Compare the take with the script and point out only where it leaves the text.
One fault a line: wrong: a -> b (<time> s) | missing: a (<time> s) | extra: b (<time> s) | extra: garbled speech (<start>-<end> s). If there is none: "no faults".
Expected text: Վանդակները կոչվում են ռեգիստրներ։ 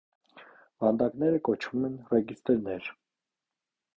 no faults